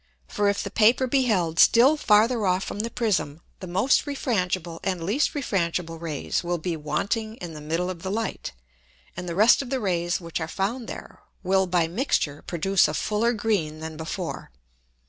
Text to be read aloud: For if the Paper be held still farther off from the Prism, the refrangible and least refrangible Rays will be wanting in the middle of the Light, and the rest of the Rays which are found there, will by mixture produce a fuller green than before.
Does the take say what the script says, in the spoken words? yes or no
no